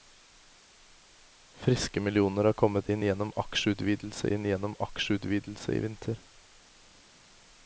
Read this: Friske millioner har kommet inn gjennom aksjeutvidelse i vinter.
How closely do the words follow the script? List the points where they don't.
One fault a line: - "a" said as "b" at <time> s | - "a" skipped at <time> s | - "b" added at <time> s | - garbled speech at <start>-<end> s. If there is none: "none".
- "inn gjennom aksjeutvidelse" added at 4.3 s